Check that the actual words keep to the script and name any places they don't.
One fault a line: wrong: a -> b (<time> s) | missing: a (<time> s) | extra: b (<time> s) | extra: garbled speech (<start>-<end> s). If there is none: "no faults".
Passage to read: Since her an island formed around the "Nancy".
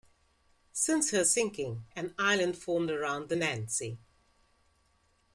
extra: sinking (1.2 s)